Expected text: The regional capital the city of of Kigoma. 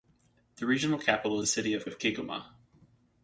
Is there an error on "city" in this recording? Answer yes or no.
no